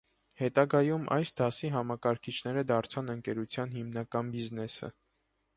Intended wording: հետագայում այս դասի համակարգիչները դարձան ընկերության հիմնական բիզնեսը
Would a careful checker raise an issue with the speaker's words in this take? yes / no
no